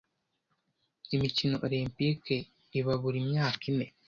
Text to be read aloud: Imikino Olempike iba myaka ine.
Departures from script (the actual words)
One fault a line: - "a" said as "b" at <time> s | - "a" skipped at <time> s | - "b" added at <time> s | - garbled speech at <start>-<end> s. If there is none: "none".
- "buri" added at 3.0 s